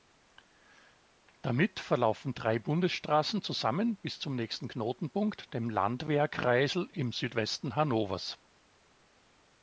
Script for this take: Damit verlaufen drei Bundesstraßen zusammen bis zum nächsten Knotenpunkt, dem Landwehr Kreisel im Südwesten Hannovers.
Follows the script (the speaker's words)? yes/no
yes